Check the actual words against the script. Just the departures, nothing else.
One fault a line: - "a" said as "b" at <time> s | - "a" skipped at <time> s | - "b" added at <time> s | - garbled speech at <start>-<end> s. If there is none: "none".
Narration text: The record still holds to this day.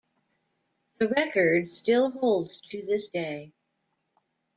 none